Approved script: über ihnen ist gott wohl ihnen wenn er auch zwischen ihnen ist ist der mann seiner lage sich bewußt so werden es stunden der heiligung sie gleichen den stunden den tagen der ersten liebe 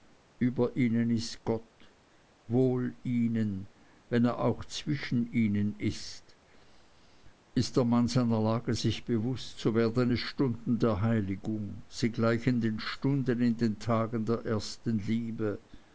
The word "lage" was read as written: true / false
true